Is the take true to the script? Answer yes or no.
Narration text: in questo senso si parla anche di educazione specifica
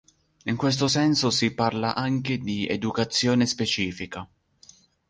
yes